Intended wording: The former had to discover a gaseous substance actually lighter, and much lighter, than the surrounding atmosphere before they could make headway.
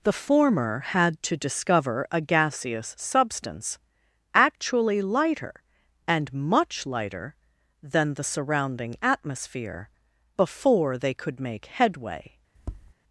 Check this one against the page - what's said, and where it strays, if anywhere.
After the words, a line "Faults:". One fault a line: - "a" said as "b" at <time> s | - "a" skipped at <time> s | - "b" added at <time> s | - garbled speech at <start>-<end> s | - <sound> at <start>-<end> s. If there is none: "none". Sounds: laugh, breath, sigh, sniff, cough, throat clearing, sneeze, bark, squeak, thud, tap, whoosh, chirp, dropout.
The former had to discover a gaseous substance actually lighter, and much lighter, than the surrounding atmosphere before they could make headway.
Faults:
- tap at 12.5-12.9 s